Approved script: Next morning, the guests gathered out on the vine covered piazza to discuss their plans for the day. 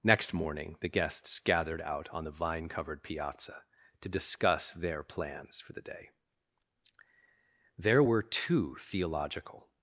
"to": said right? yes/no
yes